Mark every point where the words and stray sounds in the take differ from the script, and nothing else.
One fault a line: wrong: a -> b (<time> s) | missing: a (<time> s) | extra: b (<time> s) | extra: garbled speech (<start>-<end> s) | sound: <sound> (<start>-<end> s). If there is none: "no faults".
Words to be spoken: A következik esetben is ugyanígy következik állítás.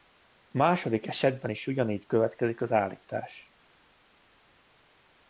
wrong: következik -> második (0.6 s)
extra: az (2.6 s)